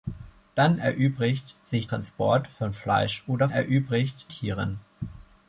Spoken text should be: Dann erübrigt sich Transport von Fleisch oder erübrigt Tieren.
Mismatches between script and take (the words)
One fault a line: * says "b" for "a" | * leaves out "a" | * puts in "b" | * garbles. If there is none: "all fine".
all fine